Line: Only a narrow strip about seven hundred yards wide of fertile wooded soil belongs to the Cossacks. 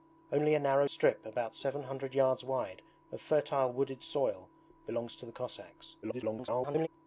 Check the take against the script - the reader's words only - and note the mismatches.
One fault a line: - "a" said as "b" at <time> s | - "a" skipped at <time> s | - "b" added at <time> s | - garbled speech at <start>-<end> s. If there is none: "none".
- garbled speech at 6.0-6.9 s